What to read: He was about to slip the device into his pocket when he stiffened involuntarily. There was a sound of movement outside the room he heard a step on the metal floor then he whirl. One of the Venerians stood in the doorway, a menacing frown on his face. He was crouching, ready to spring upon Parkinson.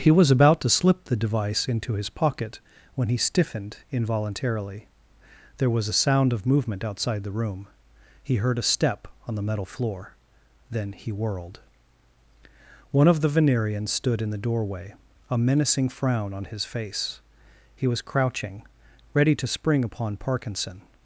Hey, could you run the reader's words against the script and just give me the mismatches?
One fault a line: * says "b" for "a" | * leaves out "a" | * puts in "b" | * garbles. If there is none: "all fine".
* says "whirled" for "whirl"